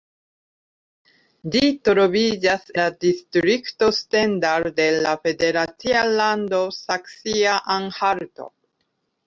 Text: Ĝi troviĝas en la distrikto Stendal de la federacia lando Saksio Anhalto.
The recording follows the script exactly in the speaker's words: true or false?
false